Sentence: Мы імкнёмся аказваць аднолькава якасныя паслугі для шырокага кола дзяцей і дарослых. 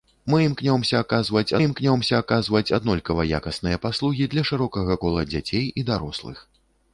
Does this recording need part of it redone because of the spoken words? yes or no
yes